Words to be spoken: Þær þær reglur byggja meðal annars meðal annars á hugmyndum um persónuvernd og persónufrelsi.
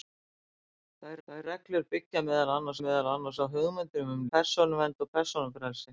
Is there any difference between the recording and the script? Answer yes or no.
no